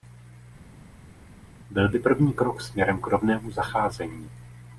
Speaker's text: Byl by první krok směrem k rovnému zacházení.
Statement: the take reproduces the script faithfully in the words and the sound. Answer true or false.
true